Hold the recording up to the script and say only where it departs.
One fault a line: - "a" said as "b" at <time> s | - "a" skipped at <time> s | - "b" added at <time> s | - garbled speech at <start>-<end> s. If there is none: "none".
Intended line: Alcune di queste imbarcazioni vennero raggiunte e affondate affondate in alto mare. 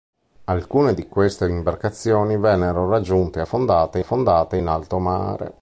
none